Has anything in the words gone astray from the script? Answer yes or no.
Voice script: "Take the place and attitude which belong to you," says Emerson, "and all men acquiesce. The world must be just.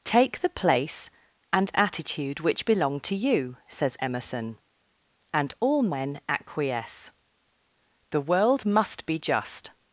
no